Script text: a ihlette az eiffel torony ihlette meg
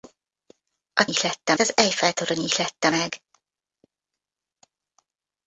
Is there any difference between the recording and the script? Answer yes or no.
no